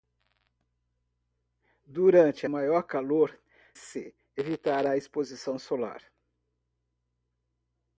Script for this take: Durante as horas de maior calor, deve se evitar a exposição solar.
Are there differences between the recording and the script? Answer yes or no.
yes